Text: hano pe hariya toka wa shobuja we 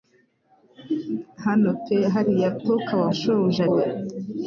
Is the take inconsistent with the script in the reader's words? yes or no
no